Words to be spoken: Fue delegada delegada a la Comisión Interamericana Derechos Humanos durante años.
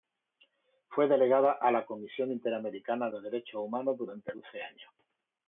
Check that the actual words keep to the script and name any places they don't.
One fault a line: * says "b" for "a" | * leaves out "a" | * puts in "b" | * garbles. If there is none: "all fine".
* leaves out "delegada"
* puts in "de"
* puts in "doce"